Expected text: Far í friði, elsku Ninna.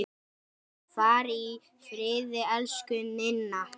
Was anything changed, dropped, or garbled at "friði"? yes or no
no